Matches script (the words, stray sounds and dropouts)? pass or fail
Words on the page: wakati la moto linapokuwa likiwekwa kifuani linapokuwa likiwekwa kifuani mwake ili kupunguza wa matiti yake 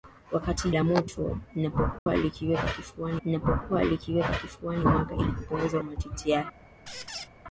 fail